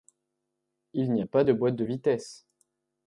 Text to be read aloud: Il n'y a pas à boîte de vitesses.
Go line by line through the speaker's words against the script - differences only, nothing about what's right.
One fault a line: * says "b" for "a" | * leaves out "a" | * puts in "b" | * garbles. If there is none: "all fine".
* says "de" for "à"